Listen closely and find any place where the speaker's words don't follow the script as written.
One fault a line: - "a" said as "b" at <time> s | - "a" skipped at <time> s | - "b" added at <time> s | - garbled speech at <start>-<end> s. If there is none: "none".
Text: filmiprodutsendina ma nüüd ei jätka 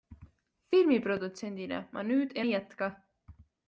none